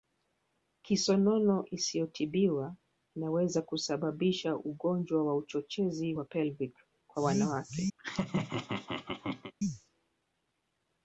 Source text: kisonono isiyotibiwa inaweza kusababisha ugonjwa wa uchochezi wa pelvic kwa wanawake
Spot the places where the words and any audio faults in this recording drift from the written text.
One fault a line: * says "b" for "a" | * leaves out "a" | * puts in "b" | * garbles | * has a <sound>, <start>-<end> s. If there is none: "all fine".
* has a laugh, 8.0-9.5 s